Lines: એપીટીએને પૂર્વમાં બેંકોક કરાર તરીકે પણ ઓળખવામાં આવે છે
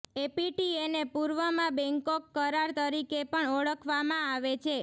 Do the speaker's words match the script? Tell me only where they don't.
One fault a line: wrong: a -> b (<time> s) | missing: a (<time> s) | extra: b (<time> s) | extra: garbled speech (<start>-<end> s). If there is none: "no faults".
no faults